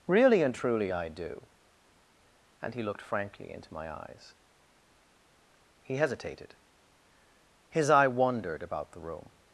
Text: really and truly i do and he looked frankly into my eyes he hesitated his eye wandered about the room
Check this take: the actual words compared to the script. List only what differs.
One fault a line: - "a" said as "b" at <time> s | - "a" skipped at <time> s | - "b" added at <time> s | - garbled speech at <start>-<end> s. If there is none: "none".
none